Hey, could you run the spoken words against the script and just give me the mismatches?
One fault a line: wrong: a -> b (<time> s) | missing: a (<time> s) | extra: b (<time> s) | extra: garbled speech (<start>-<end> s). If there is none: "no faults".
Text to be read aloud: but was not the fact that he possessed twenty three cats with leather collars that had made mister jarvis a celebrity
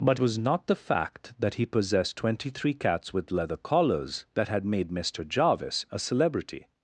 no faults